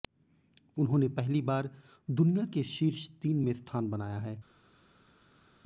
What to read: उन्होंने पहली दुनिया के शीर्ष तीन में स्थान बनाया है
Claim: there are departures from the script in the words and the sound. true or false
true